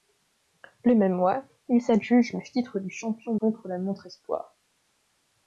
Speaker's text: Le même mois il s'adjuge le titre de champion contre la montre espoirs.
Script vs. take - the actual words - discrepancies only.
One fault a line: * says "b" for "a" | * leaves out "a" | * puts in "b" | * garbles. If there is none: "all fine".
all fine